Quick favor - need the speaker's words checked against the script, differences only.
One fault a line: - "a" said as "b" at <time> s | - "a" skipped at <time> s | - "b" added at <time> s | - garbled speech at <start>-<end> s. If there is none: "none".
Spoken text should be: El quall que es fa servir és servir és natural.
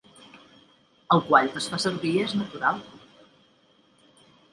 - "servir és" skipped at 2.3 s